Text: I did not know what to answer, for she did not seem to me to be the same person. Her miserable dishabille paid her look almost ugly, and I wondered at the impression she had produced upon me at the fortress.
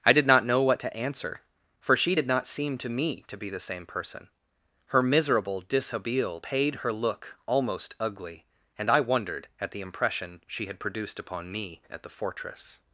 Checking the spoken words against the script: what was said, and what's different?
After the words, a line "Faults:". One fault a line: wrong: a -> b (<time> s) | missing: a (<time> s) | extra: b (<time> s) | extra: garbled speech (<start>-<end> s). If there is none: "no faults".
I did not know what to answer, for she did not seem to me to be the same person. Her miserable dishabille paid her look almost ugly, and I wondered at the impression she had produced upon me at the fortress.
Faults:
no faults